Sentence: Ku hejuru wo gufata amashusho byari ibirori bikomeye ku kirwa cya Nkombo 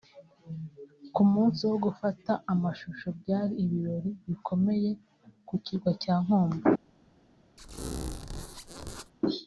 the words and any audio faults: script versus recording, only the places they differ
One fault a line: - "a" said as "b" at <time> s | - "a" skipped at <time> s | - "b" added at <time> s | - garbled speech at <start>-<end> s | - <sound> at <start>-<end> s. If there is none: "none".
- "hejuru" said as "munsi" at 1.3 s
- squeak at 7.6-9.1 s